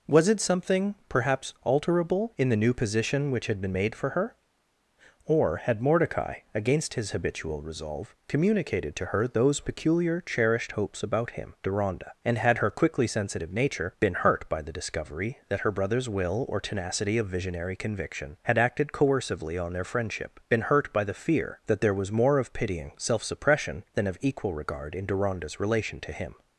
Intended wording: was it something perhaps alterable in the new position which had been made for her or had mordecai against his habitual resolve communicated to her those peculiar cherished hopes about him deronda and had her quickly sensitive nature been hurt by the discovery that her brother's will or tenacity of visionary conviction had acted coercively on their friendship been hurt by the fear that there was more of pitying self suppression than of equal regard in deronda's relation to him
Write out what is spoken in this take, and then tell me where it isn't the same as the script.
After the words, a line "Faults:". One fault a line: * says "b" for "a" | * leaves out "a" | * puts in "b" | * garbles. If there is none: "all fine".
was it something perhaps alterable in the new position which had been made for her or had mordecai against his habitual resolve communicated to her those peculiar cherished hopes about him deronda and had her quickly sensitive nature been hurt by the discovery that her brother's will or tenacity of visionary conviction had acted coercively on their friendship been hurt by the fear that there was more of pitying self suppression than of equal regard in deronda's relation to him
Faults:
all fine